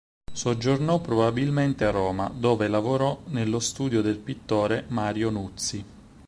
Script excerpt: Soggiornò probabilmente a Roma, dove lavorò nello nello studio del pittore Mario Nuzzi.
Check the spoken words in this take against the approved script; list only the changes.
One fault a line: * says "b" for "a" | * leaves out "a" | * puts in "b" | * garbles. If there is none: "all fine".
* leaves out "nello"